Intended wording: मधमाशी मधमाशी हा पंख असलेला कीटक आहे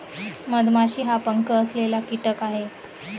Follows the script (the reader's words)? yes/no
no